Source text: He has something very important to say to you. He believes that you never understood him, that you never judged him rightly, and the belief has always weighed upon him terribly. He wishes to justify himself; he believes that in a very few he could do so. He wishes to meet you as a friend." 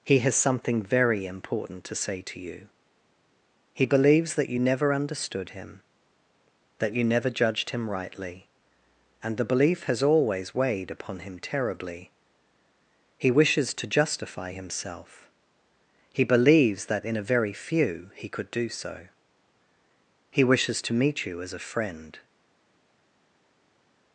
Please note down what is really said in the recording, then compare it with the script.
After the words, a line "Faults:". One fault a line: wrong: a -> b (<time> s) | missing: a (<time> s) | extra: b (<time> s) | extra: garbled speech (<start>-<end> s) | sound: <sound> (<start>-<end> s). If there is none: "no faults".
He has something very important to say to you. He believes that you never understood him, that you never judged him rightly, and the belief has always weighed upon him terribly. He wishes to justify himself; he believes that in a very few he could do so. He wishes to meet you as a friend."
Faults:
no faults